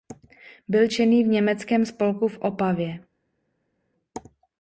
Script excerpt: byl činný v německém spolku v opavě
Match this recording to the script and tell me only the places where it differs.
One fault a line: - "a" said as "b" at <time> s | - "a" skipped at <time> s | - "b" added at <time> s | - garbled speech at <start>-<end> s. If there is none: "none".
none